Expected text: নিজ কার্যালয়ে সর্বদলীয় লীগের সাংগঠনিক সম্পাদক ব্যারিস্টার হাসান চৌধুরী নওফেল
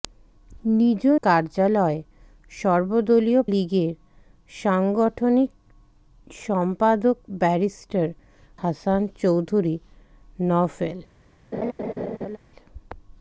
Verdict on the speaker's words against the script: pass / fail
pass